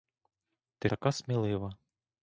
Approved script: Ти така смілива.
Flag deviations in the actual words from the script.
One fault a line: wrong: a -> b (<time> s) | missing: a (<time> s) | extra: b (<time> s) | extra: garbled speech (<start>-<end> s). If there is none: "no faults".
no faults